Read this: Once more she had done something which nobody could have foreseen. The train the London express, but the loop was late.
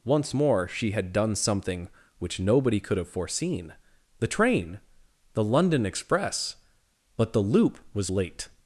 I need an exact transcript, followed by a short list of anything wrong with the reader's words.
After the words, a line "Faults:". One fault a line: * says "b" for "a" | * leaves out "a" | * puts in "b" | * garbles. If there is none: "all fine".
Once more she had done something which nobody could have foreseen. The train the London express, but the loop was late.
Faults:
all fine